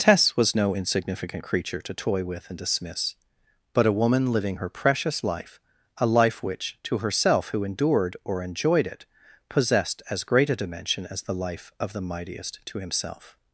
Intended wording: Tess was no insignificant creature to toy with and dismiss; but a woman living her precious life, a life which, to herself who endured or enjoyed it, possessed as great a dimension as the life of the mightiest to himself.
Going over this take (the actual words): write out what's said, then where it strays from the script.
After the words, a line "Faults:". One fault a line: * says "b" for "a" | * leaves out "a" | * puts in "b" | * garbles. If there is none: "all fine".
Tess was no insignificant creature to toy with and dismiss; but a woman living her precious life, a life which, to herself who endured or enjoyed it, possessed as great a dimension as the life of the mightiest to himself.
Faults:
all fine